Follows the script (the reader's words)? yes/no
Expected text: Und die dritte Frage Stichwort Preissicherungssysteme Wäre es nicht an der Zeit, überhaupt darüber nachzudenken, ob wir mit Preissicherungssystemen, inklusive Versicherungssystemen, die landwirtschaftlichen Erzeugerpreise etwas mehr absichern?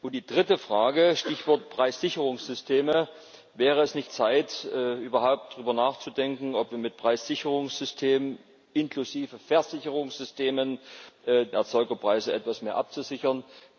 no